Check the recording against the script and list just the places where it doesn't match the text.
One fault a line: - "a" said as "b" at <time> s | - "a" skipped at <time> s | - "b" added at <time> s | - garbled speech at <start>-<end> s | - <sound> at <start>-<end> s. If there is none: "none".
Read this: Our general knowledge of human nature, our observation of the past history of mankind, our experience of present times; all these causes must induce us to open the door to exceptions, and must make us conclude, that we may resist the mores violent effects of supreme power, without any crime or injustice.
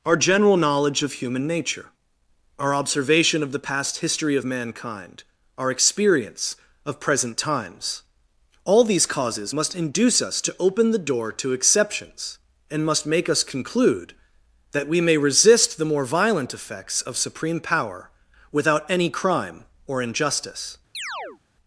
- "mores" said as "more" at 15.9 s
- chirp at 20.9-21.4 s